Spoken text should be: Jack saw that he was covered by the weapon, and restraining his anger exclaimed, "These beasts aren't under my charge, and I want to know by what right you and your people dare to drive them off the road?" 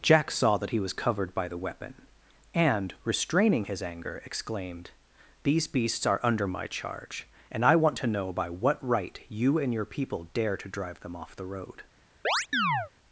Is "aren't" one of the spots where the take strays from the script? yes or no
yes